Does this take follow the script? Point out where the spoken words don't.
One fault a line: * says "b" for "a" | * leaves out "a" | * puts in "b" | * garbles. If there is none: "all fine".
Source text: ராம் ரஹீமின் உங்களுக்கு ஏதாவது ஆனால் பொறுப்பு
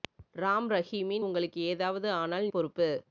all fine